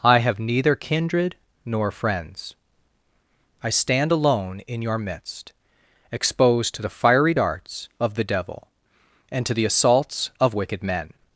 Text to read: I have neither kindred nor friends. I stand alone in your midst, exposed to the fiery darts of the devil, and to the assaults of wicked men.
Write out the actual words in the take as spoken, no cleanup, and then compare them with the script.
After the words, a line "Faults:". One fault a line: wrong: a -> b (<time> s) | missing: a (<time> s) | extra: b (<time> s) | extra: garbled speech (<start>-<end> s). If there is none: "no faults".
I have neither kindred nor friends. I stand alone in your midst, exposed to the fiery darts of the devil, and to the assaults of wicked men.
Faults:
no faults